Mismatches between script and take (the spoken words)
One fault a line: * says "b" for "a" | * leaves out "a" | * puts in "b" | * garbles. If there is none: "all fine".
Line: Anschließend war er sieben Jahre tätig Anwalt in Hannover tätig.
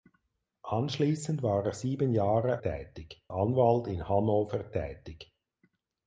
all fine